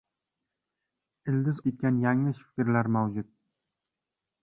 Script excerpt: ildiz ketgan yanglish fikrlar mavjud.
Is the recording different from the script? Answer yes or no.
no